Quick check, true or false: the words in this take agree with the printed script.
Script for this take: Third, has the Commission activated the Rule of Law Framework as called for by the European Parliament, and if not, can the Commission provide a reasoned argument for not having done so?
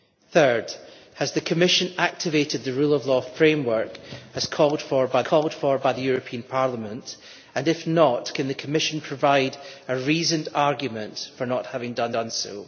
false